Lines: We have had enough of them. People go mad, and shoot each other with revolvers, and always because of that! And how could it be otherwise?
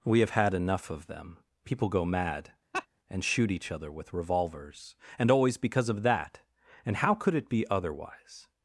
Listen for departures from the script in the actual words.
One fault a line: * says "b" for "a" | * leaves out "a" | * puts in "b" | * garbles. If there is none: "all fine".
all fine